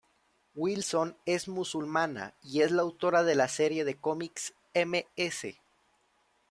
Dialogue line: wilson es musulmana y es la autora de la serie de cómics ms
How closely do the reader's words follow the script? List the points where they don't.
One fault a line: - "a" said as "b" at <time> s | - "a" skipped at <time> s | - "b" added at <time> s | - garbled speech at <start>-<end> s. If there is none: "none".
none